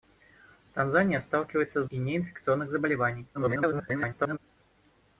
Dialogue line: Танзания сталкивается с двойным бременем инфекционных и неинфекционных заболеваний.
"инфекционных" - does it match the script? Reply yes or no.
no